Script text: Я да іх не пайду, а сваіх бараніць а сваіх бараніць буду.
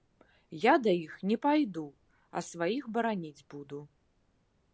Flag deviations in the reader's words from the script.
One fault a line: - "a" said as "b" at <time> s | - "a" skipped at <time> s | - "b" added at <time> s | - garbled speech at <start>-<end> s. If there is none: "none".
- "а сваіх бараніць" skipped at 3.5 s